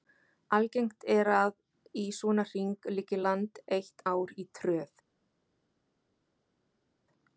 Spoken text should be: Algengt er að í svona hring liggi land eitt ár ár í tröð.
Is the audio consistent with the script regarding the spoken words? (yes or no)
no